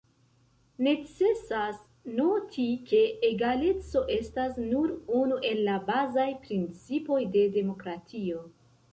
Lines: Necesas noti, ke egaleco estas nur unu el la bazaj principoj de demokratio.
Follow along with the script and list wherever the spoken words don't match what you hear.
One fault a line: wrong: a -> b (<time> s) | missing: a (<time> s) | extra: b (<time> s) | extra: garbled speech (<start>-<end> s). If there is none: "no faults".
no faults